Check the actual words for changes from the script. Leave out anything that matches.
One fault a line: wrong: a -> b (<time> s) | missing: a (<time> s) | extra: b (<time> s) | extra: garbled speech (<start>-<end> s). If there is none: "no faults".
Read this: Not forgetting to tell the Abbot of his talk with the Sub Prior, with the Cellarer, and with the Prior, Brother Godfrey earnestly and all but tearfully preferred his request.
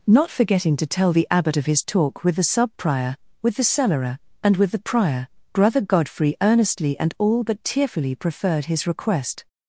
no faults